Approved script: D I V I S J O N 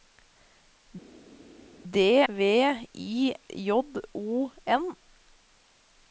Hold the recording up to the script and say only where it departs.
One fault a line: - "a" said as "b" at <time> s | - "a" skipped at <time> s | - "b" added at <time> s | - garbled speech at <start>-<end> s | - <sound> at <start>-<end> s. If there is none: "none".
- "I" skipped at 2.2 s
- "S" skipped at 3.3 s